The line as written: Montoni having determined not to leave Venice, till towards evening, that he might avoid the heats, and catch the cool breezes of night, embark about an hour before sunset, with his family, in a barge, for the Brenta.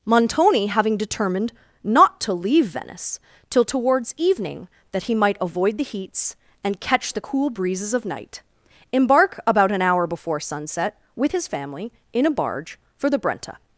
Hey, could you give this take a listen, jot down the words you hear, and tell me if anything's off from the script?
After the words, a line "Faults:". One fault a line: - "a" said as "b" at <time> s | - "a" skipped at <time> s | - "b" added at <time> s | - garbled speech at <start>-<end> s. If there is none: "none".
Montoni having determined not to leave Venice, till towards evening, that he might avoid the heats, and catch the cool breezes of night, embark about an hour before sunset, with his family, in a barge, for the Brenta.
Faults:
none